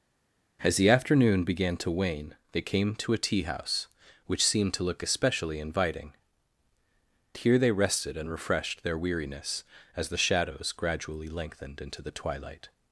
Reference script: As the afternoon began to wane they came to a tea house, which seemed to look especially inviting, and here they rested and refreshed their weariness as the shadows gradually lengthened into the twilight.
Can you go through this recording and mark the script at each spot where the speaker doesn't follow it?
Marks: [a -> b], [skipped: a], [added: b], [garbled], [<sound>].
As the afternoon began to wane they came to a tea house, which seemed to look especially inviting, [skipped: and] here they rested and refreshed their weariness as the shadows gradually lengthened into the twilight.